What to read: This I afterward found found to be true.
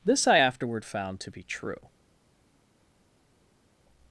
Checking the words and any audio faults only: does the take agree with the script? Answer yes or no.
no